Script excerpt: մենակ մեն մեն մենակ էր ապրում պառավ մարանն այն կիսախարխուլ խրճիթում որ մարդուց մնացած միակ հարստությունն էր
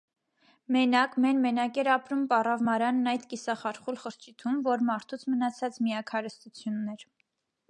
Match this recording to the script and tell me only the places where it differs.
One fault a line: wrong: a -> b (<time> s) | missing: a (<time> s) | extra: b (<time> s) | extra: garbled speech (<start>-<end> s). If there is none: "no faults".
missing: մեն (1.4 s)
wrong: այն -> այդ (3.1 s)